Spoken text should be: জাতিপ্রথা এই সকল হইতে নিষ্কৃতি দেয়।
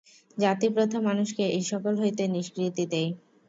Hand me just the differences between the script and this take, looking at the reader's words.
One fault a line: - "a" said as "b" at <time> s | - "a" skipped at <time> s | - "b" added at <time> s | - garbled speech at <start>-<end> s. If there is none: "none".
- "মানুষকে" added at 1.0 s